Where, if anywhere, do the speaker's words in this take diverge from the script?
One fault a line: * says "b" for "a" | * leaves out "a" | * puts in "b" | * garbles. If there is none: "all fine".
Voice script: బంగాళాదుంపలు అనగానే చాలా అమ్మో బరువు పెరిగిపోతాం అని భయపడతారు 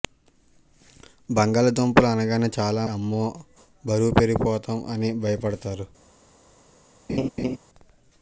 all fine